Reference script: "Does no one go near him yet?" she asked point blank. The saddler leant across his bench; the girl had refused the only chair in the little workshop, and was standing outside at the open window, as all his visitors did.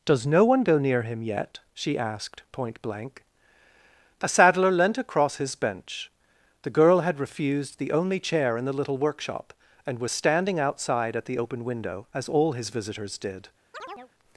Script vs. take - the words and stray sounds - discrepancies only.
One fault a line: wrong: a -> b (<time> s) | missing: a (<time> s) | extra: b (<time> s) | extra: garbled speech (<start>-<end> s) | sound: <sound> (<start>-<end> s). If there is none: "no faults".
wrong: The -> A (4.2 s)
sound: chirp (13.7-14.1 s)